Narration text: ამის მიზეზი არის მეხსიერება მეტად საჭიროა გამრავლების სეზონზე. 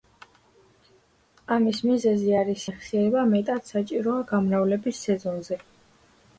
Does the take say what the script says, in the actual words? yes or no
yes